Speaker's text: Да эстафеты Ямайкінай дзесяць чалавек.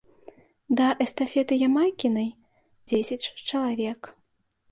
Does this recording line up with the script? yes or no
yes